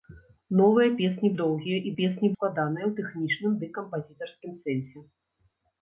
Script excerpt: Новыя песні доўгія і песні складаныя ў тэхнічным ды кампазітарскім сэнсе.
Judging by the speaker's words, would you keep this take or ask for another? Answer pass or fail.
pass